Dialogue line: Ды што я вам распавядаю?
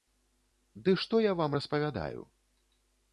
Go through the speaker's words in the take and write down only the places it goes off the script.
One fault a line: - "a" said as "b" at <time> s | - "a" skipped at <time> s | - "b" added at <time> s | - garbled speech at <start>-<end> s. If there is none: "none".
none